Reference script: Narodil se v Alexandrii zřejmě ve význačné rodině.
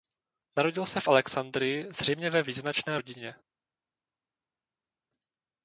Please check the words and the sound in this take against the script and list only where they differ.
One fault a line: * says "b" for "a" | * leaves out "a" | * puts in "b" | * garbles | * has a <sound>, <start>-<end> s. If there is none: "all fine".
all fine